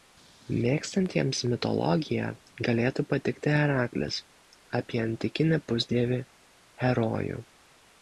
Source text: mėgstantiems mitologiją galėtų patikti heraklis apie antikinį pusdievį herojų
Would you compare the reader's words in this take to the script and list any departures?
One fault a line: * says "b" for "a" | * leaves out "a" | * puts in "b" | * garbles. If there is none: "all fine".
all fine